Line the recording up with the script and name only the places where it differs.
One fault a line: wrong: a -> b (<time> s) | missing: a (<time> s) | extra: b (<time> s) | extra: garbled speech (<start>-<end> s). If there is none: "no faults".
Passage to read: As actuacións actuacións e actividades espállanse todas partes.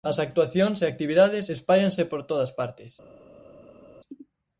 missing: actuacións (0.8 s)
extra: por (2.1 s)